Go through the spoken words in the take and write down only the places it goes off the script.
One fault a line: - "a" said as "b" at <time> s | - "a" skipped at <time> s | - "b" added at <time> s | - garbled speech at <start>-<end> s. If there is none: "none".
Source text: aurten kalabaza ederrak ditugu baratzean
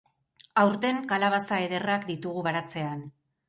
none